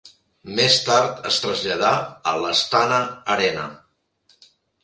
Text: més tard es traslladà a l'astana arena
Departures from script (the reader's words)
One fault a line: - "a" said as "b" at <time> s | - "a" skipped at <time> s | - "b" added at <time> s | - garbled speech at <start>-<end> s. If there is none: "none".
none